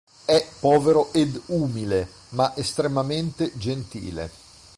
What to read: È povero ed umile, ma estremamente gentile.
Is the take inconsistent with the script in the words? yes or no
no